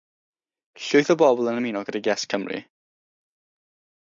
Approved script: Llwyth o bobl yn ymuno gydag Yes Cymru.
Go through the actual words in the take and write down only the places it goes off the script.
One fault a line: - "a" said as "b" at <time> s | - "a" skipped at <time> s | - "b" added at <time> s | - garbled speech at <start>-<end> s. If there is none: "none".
none